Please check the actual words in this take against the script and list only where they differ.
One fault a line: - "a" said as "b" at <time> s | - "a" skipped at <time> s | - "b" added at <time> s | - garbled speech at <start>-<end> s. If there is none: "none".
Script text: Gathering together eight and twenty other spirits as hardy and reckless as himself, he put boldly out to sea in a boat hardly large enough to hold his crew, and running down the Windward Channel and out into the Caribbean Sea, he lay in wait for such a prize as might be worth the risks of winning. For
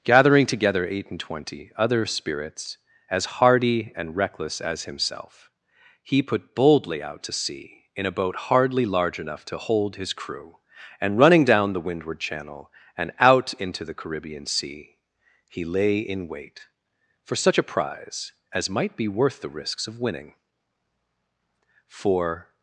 none